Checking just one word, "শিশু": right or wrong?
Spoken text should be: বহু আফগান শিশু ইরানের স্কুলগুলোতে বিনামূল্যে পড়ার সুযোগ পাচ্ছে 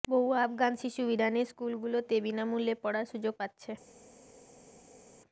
right